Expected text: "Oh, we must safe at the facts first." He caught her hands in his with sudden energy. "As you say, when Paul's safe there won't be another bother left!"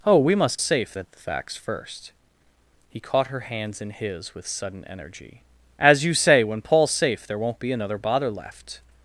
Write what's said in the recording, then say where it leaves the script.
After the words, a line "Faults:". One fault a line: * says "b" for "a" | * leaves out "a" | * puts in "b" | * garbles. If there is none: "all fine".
"Oh, we must safe at the facts first." He caught her hands in his with sudden energy. "As you say, when Paul's safe there won't be another bother left!"
Faults:
all fine